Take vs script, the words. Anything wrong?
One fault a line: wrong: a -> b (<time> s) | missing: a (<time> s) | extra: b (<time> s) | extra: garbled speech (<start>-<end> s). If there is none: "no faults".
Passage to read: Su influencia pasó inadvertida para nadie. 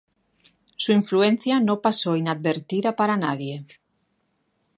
extra: no (1.6 s)